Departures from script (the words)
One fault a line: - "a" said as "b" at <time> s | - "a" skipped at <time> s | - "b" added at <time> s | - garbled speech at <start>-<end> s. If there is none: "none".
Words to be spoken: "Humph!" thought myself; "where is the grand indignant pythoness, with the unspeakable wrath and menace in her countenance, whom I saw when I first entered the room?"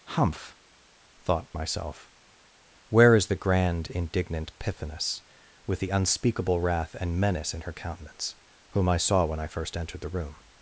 none